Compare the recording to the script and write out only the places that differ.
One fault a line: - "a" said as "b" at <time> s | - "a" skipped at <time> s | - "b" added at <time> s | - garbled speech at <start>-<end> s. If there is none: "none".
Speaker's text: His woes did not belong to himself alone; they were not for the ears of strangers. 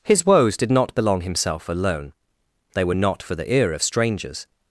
- "to" skipped at 1.2 s
- "ears" said as "ear" at 3.5 s